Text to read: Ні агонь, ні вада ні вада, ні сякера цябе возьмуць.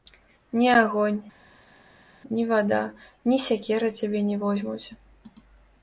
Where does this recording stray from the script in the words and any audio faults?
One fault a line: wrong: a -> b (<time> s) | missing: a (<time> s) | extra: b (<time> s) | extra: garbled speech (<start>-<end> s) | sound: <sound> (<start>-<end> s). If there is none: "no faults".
missing: вада ні (3.4 s)
extra: не (4.2 s)